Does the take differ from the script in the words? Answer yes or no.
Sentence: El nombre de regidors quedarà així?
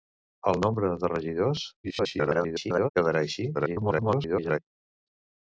yes